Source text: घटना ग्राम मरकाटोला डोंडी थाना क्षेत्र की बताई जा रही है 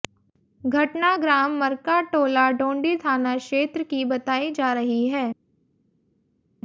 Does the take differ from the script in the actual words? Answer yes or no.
no